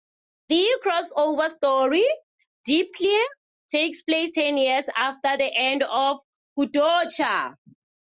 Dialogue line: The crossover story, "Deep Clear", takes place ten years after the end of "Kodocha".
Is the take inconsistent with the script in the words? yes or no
no